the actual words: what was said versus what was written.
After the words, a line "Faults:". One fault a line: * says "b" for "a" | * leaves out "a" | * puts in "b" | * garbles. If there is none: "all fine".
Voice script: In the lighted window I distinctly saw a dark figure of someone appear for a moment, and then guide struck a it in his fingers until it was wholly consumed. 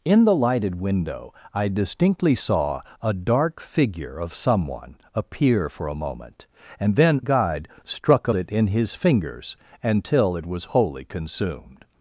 In the lighted window I distinctly saw a dark figure of someone appear for a moment, and then guide struck a it in his fingers until it was wholly consumed.
Faults:
all fine